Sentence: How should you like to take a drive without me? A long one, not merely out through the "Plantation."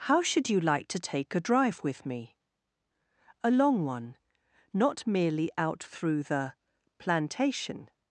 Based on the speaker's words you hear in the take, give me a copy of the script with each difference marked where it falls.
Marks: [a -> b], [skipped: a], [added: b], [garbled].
How should you like to take a drive [without -> with] me? A long one, not merely out through the "Plantation."